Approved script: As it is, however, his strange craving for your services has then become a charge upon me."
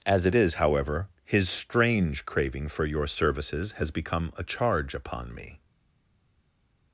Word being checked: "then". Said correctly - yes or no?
no